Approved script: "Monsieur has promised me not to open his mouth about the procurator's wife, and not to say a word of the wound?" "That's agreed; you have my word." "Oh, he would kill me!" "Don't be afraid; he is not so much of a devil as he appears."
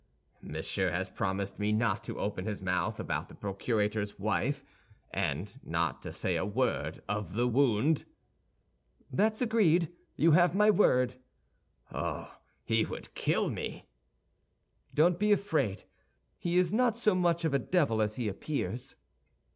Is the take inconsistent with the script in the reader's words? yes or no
no